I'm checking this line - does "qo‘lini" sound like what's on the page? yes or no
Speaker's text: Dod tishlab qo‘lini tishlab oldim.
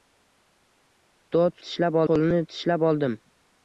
yes